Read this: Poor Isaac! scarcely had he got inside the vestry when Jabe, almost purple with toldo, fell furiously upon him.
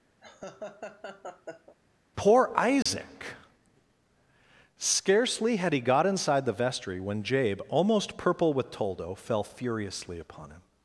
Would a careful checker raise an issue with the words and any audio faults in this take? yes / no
yes